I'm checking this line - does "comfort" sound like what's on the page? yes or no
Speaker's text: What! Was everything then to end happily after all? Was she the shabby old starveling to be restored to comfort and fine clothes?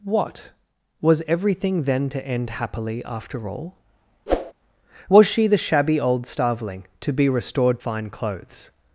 no